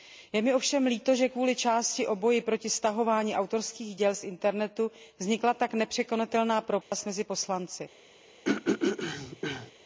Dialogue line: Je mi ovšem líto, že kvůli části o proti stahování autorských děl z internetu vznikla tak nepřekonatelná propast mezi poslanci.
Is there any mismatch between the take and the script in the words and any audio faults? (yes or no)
yes